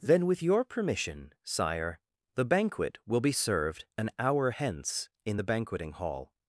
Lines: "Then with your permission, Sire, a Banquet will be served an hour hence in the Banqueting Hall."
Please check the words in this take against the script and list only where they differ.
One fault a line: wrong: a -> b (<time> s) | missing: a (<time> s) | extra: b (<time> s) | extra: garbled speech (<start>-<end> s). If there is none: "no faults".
wrong: a -> the (2.3 s)